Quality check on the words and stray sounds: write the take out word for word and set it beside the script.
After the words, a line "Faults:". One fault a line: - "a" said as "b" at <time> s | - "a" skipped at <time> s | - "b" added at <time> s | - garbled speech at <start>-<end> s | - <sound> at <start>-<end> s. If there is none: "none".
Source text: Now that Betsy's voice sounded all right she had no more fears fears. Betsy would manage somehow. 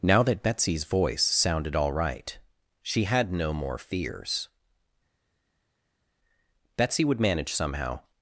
Now that Betsy's voice sounded all right she had no more fears. Betsy would manage somehow.
Faults:
- "fears" skipped at 4.5 s